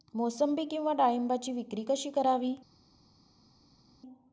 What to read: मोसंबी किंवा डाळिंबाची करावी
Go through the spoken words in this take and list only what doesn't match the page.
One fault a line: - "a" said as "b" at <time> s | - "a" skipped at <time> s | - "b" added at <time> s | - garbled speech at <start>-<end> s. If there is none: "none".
- "विक्री कशी" added at 1.5 s